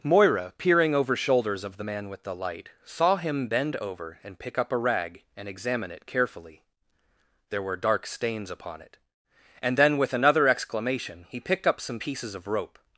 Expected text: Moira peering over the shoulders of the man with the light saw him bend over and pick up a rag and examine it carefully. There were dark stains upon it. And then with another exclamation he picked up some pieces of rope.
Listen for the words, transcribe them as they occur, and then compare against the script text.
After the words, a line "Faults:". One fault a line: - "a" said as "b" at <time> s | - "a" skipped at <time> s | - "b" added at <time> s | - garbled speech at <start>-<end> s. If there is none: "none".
Moira peering over shoulders of the man with the light saw him bend over and pick up a rag and examine it carefully. There were dark stains upon it. And then with another exclamation he picked up some pieces of rope.
Faults:
- "the" skipped at 1.1 s